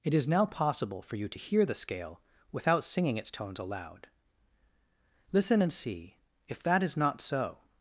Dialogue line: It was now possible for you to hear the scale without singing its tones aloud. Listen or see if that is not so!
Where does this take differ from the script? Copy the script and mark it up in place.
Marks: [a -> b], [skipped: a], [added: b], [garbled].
It [was -> is] now possible for you to hear the scale without singing its tones aloud. Listen [or -> and] see if that is not so!